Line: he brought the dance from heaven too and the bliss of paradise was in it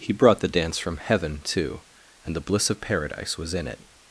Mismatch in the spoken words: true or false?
false